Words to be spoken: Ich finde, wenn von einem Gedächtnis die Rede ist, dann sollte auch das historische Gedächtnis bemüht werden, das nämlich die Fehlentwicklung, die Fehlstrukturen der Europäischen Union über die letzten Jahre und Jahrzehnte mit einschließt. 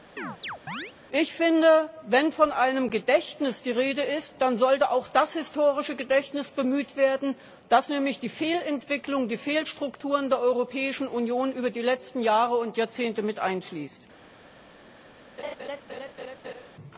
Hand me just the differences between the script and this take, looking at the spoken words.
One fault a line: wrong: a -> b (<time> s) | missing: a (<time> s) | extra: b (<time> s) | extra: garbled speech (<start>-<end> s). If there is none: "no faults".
no faults